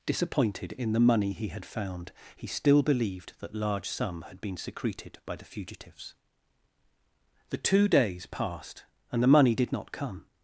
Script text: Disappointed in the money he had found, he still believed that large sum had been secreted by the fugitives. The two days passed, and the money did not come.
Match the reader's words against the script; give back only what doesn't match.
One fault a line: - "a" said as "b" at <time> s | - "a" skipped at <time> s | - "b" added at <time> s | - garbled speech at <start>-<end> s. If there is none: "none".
none